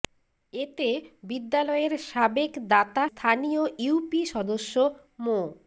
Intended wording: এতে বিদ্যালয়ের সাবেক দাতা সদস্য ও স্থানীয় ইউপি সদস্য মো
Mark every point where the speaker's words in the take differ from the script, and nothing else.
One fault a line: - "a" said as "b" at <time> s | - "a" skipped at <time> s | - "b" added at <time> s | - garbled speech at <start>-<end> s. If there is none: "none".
- "সদস্য ও" skipped at 3.0 s